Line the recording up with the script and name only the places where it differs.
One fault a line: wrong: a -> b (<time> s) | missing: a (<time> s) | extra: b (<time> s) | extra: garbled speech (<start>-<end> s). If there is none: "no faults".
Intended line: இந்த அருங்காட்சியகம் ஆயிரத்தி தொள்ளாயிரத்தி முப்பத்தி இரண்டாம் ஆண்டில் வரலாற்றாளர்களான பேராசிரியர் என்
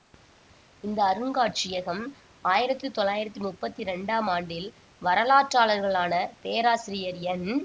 no faults